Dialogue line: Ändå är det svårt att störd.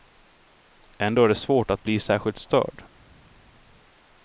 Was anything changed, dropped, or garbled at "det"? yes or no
no